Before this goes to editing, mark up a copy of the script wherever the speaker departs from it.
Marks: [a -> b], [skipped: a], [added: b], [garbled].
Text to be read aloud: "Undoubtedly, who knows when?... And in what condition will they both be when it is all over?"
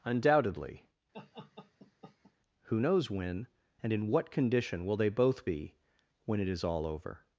"Undoubtedly, who knows when?... And in what condition will they both be when it is all over?"